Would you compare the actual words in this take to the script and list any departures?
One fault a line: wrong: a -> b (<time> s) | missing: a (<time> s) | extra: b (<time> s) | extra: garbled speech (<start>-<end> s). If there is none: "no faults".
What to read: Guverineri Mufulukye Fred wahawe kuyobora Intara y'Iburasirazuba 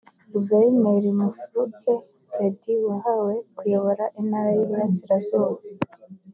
no faults